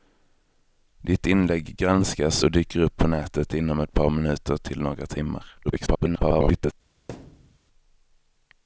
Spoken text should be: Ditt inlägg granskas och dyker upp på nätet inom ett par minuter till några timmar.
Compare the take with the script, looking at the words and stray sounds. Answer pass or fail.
fail